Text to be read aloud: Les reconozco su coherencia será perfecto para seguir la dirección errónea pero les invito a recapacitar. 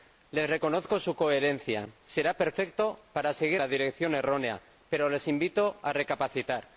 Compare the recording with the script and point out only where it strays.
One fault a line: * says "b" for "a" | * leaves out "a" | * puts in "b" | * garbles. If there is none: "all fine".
all fine